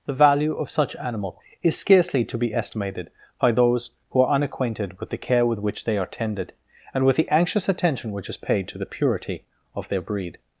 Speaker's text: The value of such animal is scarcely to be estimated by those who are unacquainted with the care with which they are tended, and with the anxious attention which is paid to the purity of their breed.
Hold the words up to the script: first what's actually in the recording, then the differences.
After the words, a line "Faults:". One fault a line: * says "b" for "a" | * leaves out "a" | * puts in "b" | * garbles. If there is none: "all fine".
The value of such animal is scarcely to be estimated by those who are unacquainted with the care with which they are tended, and with the anxious attention which is paid to the purity of their breed.
Faults:
all fine